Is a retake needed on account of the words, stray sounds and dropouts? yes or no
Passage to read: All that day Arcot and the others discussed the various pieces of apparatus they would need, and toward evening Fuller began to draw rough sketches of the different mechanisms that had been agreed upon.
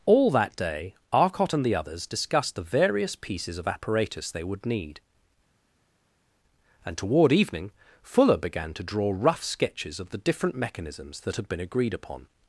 no